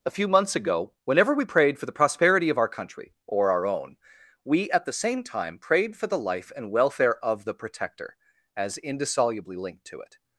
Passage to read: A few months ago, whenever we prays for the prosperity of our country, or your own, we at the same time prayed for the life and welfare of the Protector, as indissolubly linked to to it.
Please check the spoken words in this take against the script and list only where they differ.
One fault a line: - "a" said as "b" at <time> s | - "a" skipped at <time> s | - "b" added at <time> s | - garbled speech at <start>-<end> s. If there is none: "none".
- "prays" said as "prayed" at 1.4 s
- "your" said as "our" at 3.5 s
- "to" skipped at 10.0 s